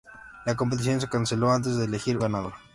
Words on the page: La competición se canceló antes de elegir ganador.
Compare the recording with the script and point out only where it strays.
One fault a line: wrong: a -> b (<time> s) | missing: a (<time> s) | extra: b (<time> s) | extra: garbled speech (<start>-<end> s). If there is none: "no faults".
no faults